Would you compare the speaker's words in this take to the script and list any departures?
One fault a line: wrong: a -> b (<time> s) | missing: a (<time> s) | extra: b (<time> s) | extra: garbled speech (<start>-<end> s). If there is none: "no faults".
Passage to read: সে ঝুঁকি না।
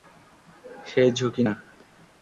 no faults